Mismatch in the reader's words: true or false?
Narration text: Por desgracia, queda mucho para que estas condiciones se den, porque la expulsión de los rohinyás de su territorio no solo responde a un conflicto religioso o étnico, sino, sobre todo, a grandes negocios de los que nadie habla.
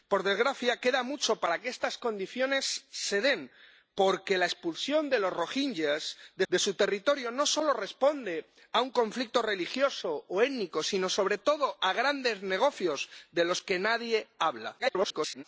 true